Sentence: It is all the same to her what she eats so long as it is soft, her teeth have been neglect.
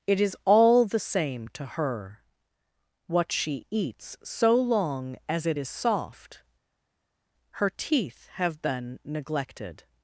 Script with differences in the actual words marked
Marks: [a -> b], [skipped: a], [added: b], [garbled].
It is all the same to her what she eats so long as it is soft, her teeth have been [neglect. -> neglected]